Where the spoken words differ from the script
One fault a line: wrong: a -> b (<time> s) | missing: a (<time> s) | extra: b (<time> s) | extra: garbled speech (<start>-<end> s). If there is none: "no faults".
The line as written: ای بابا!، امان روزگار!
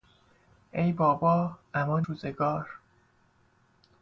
no faults